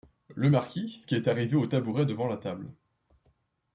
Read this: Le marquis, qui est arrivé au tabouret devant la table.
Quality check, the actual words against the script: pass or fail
pass